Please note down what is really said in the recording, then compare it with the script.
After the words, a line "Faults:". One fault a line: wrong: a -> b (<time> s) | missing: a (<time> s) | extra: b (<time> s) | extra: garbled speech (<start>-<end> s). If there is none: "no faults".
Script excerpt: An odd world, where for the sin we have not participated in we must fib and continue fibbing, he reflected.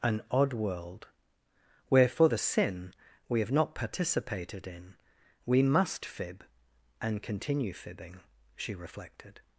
An odd world, where for the sin we have not participated in we must fib and continue fibbing, she reflected.
Faults:
wrong: he -> she (8.6 s)